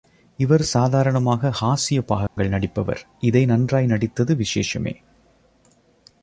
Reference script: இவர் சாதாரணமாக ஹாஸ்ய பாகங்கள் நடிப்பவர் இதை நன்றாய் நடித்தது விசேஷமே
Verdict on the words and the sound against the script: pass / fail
fail